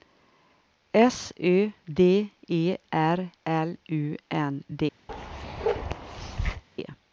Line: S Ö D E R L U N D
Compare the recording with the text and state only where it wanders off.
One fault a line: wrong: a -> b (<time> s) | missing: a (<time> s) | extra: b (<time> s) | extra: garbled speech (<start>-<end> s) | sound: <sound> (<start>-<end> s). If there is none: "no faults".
sound: bark (5.1-6.6 s)